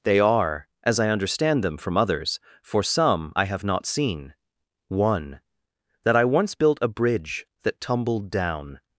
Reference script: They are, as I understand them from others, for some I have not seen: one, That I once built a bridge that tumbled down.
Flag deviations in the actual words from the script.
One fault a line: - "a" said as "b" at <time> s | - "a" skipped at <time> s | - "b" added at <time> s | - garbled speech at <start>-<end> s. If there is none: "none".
none